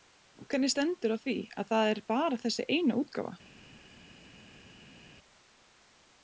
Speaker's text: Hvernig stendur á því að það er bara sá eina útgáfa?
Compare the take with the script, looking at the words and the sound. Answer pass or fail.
fail